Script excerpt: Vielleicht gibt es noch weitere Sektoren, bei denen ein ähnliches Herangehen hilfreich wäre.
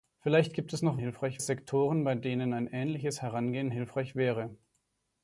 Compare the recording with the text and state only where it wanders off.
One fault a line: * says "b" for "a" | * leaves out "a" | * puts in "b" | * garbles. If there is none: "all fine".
* says "hilfreich" for "weitere"